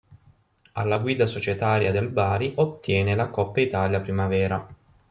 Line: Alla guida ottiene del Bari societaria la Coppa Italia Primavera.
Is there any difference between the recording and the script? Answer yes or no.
yes